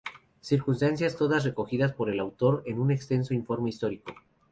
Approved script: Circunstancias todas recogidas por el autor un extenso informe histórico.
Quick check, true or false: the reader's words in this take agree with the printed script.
false